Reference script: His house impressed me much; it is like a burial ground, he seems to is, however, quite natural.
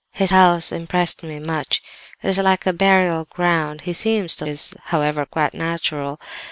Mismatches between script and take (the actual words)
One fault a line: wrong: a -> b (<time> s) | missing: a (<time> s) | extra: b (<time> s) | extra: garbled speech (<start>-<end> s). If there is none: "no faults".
no faults